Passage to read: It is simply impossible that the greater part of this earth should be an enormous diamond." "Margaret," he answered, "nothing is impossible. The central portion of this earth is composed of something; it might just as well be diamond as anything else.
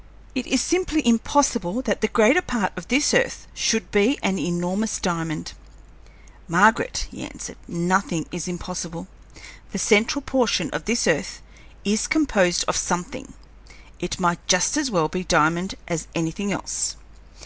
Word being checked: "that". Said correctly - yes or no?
yes